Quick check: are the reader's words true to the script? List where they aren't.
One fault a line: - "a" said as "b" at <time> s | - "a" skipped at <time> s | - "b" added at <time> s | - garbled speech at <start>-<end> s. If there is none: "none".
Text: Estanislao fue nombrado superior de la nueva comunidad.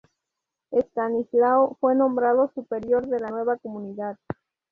none